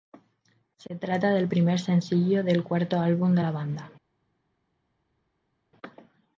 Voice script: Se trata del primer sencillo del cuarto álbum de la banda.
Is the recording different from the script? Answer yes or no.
no